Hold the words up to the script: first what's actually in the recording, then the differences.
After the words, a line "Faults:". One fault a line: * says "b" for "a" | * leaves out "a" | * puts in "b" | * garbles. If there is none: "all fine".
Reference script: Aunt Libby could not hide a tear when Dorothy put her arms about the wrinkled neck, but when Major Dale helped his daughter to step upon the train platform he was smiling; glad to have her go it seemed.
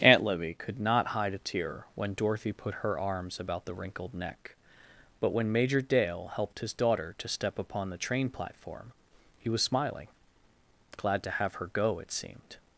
Aunt Libby could not hide a tear when Dorothy put her arms about the wrinkled neck, but when Major Dale helped his daughter to step upon the train platform he was smiling; glad to have her go it seemed.
Faults:
all fine